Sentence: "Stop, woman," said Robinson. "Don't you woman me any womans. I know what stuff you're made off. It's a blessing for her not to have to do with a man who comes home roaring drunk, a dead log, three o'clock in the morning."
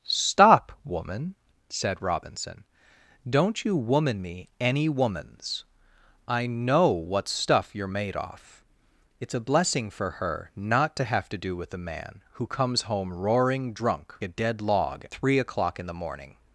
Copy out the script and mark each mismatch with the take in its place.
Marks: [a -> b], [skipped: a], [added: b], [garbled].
"Stop, woman," said Robinson. "Don't you woman me any womans. I know what stuff you're made off. It's a blessing for her not to have to do with a man who comes home roaring drunk, a dead log, three o'clock in the morning."